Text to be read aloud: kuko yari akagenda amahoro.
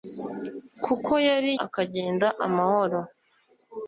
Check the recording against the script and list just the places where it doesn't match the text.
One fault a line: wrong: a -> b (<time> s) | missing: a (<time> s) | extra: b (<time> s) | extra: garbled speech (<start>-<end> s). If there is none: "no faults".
no faults